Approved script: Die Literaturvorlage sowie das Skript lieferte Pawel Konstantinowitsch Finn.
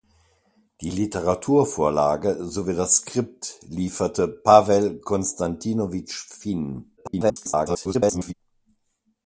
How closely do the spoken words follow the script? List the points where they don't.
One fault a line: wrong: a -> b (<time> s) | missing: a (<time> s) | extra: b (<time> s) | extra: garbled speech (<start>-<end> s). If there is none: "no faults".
extra: garbled speech (7.0-8.3 s)